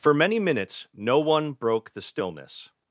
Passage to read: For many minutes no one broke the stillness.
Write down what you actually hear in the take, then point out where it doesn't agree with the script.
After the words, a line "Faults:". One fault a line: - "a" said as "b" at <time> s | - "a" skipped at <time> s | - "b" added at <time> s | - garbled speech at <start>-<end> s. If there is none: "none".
For many minutes no one broke the stillness.
Faults:
none